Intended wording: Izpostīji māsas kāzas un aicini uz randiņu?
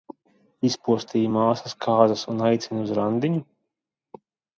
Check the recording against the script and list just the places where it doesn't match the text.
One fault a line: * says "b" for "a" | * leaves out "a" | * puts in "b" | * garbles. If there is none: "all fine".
all fine